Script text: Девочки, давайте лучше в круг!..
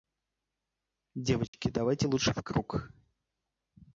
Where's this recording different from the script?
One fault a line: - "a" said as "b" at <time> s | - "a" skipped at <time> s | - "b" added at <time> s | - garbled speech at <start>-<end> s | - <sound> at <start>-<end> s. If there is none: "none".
- dropout at 1.5-1.5 s